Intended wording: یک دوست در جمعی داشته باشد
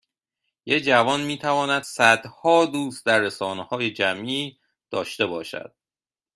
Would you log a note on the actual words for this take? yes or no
yes